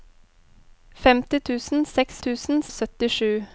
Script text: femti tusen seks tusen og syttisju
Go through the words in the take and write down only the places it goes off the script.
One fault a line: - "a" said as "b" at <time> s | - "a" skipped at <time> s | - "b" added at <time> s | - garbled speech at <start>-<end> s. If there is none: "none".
none